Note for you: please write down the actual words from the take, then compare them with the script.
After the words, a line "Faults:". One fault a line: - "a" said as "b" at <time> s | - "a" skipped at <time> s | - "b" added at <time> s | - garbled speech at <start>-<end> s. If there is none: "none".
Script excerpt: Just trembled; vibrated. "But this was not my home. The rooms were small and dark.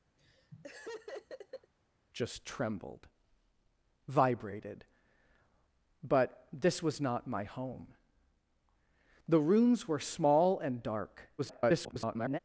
Just trembled; vibrated. "But this was not my home. The rooms were small and dark. [garbled]
Faults:
- garbled speech at 11.4-12.4 s